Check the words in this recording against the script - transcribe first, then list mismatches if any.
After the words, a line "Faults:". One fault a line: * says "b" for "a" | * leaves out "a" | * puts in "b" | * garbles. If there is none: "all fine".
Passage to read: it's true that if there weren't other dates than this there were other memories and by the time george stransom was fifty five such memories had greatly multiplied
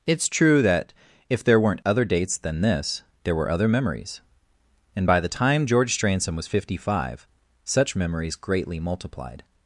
it's true that if there weren't other dates than this there were other memories and by the time george stransom was fifty five such memories greatly multiplied
Faults:
* leaves out "had"